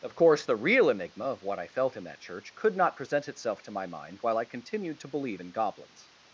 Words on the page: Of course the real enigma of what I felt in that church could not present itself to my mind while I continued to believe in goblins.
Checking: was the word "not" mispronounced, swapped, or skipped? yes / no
no